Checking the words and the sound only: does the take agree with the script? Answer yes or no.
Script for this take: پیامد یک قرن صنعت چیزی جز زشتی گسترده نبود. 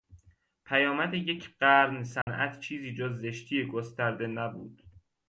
no